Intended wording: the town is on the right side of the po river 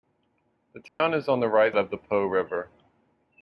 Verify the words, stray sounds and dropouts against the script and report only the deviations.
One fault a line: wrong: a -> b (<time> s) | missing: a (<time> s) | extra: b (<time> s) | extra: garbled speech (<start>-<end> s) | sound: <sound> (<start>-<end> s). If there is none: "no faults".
sound: dropout (0.9-1.0 s)
missing: side (1.8 s)